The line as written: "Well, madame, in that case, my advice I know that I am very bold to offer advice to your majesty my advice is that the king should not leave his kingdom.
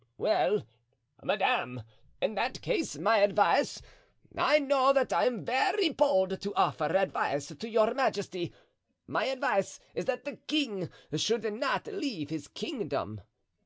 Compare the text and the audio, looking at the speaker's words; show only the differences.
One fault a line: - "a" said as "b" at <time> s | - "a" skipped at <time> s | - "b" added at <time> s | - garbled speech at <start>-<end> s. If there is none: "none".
none